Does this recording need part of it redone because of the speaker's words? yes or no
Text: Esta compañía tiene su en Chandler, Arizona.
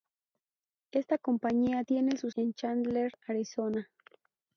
no